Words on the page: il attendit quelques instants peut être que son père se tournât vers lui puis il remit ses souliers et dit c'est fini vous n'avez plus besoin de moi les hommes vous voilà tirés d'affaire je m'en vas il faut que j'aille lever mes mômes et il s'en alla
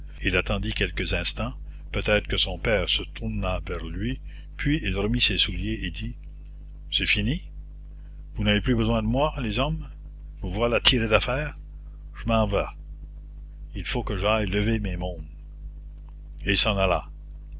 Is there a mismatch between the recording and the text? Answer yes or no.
no